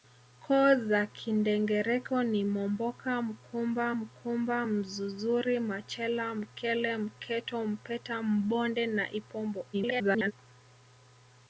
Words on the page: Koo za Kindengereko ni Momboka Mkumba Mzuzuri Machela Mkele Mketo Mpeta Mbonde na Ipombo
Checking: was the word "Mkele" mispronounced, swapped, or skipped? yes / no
no